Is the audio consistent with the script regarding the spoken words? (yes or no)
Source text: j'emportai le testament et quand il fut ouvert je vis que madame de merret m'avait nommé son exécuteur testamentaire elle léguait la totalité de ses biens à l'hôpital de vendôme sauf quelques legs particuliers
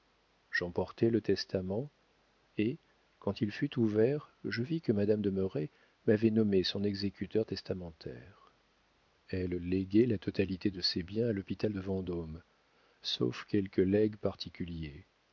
yes